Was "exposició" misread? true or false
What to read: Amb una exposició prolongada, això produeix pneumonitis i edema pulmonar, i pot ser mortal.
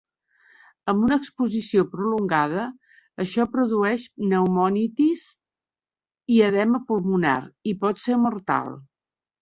false